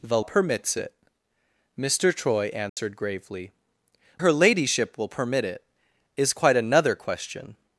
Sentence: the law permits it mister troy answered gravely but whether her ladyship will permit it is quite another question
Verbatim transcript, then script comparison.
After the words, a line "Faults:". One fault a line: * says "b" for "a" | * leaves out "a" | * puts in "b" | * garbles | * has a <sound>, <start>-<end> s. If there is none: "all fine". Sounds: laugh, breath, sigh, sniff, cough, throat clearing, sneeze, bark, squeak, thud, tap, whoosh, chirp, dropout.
the permits it mister troy answered gravely her ladyship will permit it is quite another question
Faults:
* leaves out "law"
* has a dropout, 2.7-2.8 s
* leaves out "but whether"